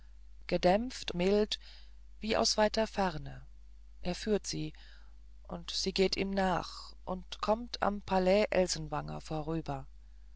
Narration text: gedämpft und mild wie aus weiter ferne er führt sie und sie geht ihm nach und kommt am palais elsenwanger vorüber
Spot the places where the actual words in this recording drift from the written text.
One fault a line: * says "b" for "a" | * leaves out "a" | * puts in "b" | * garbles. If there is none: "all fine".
* leaves out "und"